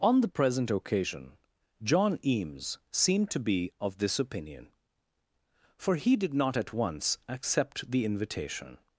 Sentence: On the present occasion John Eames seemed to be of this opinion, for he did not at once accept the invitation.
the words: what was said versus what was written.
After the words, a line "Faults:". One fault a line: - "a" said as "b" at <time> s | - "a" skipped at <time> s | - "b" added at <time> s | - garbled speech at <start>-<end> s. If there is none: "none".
On the present occasion John Eames seemed to be of this opinion, for he did not at once accept the invitation.
Faults:
none